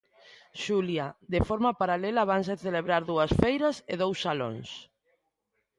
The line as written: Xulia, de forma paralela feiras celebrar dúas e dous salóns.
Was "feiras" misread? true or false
true